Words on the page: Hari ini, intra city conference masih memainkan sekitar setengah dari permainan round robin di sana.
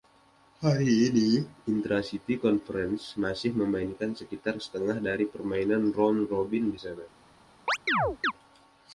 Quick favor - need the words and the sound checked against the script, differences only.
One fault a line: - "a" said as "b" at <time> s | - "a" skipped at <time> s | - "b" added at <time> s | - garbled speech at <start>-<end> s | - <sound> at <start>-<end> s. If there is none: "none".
- chirp at 7.7-8.3 s